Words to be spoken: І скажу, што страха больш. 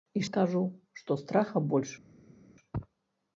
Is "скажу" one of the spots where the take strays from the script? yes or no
no